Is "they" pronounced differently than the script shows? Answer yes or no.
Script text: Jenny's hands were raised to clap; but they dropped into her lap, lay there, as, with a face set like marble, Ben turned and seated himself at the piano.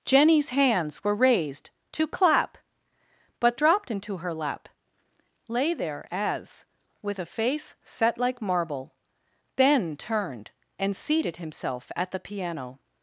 yes